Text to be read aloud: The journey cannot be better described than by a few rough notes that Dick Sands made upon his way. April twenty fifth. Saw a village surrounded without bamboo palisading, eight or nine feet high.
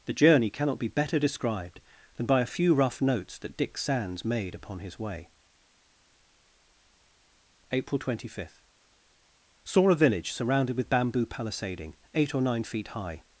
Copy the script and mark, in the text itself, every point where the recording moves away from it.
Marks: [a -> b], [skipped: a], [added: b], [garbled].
The journey cannot be better described than by a few rough notes that Dick Sands made upon his way. April twenty fifth. Saw a village surrounded [without -> with] bamboo palisading, eight or nine feet high.